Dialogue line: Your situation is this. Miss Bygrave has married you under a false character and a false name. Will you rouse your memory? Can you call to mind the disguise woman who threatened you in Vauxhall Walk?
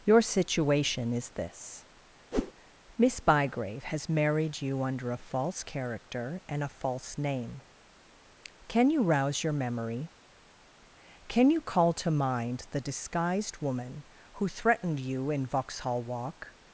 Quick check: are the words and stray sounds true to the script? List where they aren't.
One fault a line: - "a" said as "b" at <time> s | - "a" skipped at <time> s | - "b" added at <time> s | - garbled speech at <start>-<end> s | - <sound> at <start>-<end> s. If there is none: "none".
- whoosh at 2.3-2.5 s
- "Will" said as "Can" at 8.7 s
- "disguise" said as "disguised" at 12.8 s